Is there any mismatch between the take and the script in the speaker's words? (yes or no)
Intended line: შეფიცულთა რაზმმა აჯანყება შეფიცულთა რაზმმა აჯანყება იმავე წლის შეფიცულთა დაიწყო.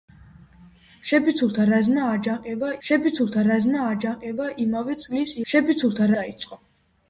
no